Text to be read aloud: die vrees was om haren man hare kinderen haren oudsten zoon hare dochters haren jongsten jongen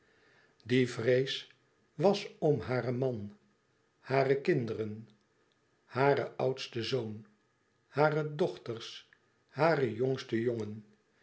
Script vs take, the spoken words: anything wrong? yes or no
no